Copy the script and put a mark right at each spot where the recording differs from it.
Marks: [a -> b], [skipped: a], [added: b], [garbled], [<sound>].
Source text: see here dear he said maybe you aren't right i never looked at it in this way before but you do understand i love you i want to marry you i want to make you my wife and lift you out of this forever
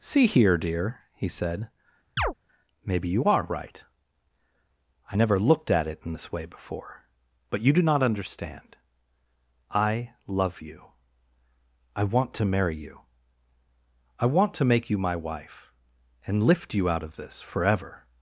see here dear he said [chirp] maybe you [aren't -> are] right i never looked at it in this way before but you do [added: not] understand i love you i want to marry you i want to make you my wife and lift you out of this forever